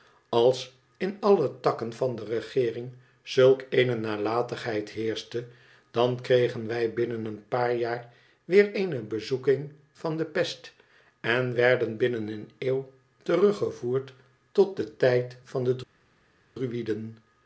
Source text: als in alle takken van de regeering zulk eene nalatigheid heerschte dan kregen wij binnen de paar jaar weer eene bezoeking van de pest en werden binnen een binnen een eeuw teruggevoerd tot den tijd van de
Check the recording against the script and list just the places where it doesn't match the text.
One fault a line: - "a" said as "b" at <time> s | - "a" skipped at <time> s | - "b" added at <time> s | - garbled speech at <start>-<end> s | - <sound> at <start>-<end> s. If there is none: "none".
- "de" said as "een" at 7.2 s
- "binnen een" skipped at 12.5 s